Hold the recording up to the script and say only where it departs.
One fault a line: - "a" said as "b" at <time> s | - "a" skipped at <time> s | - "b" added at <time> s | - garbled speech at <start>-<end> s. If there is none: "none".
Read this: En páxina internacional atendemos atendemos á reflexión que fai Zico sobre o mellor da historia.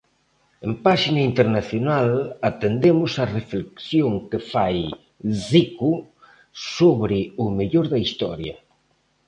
- "atendemos" skipped at 3.1 s